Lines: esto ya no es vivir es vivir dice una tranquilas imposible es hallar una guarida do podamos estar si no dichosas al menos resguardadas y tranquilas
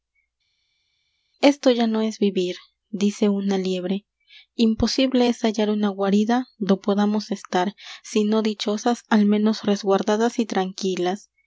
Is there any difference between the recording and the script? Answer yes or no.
yes